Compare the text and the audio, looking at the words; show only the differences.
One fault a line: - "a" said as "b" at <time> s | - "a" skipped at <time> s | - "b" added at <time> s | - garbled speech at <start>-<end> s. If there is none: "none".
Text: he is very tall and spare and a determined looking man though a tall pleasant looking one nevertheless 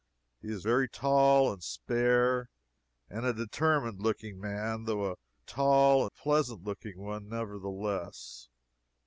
none